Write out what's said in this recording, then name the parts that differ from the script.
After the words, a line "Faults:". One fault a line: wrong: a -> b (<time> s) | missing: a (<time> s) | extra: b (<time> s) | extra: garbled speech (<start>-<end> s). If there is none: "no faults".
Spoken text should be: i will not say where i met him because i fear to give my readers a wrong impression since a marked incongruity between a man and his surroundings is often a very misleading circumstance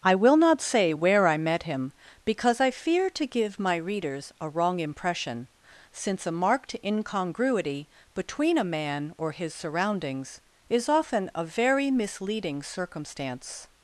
i will not say where i met him because i fear to give my readers a wrong impression since a marked incongruity between a man or his surroundings is often a very misleading circumstance
Faults:
wrong: and -> or (9.2 s)